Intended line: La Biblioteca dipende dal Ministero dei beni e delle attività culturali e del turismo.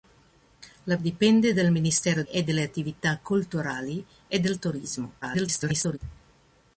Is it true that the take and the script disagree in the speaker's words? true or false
true